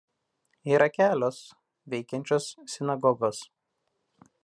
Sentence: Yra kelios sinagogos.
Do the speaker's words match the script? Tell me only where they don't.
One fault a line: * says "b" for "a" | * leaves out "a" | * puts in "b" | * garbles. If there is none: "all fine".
* puts in "veikiančios"